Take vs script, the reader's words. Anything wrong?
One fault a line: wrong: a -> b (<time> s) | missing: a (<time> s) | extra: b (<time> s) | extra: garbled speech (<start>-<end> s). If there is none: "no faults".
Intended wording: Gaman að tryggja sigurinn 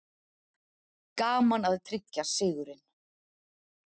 no faults